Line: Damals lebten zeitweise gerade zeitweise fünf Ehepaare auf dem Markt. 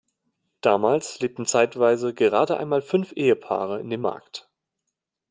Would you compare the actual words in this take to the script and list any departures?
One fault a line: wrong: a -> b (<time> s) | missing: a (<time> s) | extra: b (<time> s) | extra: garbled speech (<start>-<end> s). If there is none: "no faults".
wrong: zeitweise -> einmal (2.6 s)
wrong: auf -> in (3.8 s)